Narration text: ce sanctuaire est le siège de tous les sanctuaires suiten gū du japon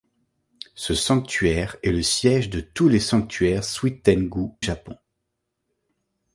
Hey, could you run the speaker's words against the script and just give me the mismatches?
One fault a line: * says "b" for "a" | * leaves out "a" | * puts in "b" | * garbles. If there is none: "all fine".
* leaves out "du"